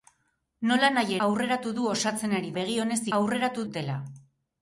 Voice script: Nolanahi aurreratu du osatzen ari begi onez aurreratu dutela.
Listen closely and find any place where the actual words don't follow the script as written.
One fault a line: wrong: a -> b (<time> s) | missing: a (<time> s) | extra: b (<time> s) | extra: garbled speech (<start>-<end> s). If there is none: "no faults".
no faults